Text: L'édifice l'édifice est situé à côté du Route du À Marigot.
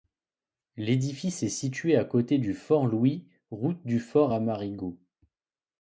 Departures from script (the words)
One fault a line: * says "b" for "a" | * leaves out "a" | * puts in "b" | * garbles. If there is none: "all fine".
* leaves out "l'édifice"
* puts in "Fort Louis"
* puts in "Fort"